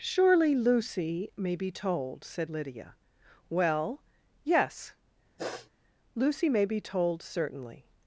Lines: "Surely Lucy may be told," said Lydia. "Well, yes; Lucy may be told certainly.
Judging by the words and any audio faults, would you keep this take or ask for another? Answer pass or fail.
fail